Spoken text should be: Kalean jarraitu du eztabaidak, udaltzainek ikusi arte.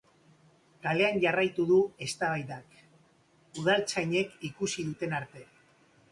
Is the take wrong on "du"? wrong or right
right